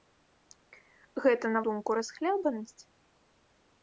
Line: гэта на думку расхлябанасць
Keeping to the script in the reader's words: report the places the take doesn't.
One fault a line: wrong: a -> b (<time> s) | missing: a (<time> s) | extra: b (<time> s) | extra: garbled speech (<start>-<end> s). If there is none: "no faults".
no faults